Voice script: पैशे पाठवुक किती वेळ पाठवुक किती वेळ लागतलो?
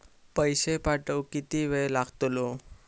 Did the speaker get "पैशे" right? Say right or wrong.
right